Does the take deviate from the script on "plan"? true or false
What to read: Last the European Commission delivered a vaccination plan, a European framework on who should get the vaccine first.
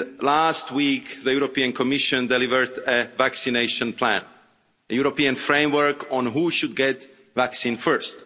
false